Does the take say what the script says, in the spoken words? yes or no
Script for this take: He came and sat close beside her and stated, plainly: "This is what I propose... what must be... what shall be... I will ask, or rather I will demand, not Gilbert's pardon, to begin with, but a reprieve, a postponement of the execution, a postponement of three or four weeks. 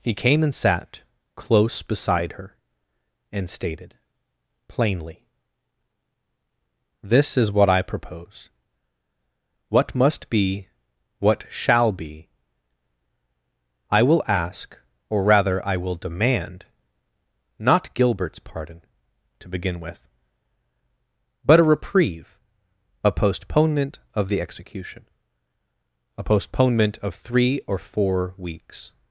yes